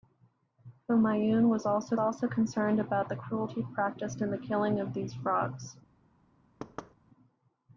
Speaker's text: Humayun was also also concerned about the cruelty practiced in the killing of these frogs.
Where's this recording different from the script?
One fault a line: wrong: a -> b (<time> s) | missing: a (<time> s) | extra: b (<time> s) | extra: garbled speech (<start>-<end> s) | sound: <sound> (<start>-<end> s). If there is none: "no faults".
sound: thud (6.6-6.9 s)